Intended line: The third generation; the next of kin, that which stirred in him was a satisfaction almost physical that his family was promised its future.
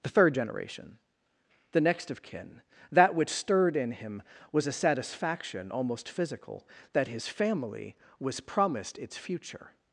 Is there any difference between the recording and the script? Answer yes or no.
no